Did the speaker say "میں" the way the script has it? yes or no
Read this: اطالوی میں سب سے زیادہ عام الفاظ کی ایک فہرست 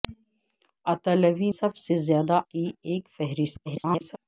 no